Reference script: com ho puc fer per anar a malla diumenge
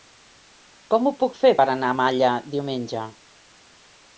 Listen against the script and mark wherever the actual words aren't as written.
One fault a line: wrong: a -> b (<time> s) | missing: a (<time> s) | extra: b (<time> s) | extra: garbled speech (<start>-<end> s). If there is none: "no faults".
no faults